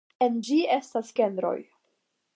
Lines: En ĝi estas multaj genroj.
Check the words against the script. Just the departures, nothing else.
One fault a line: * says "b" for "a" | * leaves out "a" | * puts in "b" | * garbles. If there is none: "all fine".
* leaves out "multaj"